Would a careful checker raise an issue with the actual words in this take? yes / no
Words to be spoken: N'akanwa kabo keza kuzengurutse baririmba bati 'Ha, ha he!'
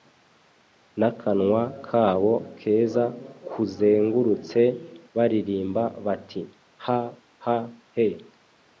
no